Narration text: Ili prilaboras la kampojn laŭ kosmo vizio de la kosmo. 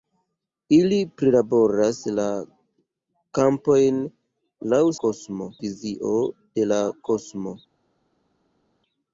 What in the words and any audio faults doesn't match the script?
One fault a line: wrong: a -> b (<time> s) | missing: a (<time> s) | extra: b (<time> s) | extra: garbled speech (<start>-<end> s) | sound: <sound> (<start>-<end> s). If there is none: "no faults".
no faults